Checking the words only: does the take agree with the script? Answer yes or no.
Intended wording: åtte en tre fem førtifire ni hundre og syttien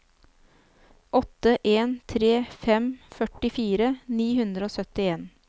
yes